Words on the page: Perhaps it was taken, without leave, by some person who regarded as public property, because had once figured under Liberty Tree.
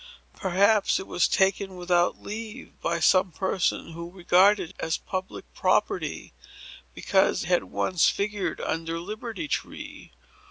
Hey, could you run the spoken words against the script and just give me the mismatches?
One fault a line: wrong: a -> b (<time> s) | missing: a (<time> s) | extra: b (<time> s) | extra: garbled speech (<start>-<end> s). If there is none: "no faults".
no faults